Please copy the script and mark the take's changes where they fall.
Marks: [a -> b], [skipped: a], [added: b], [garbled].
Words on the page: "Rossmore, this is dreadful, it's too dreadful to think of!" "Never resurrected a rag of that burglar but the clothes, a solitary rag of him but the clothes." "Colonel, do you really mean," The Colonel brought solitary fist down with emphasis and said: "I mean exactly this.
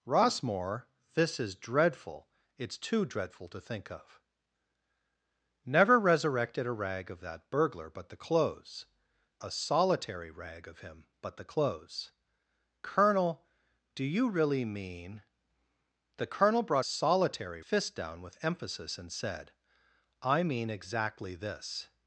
"Rossmore, this is dreadful, it's too dreadful to think of!" "Never resurrected a rag of that burglar but the clothes, a solitary rag of him but the clothes." "Colonel, do you really mean," The Colonel brought solitary fist down with emphasis and said: "I mean exactly this.